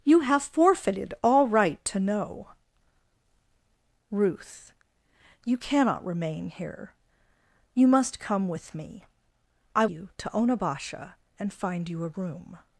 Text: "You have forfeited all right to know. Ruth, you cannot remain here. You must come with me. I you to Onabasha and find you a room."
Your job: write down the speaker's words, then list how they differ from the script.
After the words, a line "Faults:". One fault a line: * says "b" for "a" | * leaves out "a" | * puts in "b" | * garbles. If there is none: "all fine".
"You have forfeited all right to know. Ruth, you cannot remain here. You must come with me. I you to Onabasha and find you a room."
Faults:
all fine